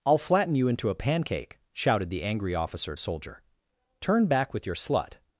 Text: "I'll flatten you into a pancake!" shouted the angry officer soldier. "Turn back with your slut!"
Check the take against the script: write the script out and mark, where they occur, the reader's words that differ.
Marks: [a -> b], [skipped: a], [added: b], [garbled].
"I'll flatten you into a pancake!" shouted the angry officer soldier. "Turn back with your slut!"